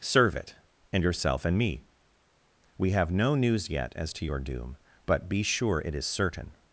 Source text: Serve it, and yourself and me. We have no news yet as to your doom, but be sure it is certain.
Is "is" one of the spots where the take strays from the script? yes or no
no